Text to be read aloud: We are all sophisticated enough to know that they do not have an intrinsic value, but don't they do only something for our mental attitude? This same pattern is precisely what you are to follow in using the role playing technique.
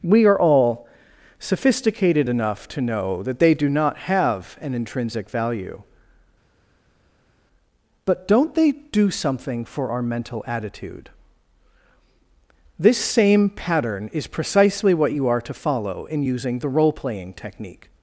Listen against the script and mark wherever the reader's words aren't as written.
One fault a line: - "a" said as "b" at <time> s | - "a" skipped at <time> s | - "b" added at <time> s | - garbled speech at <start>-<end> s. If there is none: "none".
- "only" skipped at 9.1 s